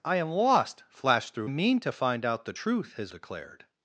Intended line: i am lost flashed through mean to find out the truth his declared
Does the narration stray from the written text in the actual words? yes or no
no